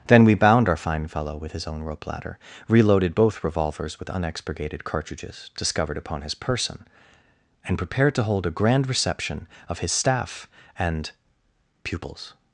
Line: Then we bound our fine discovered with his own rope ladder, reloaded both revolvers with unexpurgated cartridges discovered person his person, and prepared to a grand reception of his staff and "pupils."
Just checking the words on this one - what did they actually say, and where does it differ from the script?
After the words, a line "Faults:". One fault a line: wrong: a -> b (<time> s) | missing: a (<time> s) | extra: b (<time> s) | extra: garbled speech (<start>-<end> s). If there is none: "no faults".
Then we bound our fine fellow with his own rope ladder, reloaded both revolvers with unexpurgated cartridges discovered upon his person, and prepared to hold a grand reception of his staff and "pupils."
Faults:
wrong: discovered -> fellow (1.1 s)
wrong: person -> upon (6.0 s)
extra: hold (8.2 s)